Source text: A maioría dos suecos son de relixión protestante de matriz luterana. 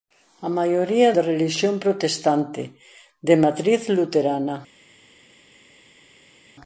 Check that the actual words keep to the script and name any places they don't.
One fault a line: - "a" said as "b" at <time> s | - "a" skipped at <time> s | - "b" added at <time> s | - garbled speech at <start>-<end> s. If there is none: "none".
- "dos suecos son" skipped at 1.1 s